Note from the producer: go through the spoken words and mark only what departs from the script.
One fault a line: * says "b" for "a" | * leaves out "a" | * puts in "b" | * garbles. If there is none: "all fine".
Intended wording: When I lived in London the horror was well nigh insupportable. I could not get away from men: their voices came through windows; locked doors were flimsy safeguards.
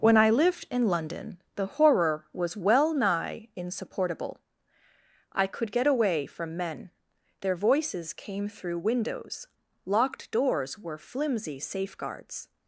* leaves out "not"